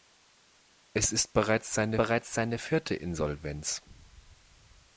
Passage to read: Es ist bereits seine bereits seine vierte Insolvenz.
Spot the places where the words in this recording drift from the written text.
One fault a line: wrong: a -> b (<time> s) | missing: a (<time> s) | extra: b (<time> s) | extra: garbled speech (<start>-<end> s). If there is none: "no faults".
no faults